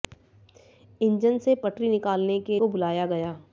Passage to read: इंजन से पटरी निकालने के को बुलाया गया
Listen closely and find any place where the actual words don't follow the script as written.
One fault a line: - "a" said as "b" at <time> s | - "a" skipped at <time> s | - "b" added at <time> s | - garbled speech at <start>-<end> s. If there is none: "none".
none